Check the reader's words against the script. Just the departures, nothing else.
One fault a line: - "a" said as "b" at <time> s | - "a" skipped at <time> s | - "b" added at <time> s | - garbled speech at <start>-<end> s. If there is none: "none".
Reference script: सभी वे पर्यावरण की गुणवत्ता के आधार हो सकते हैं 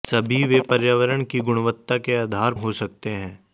none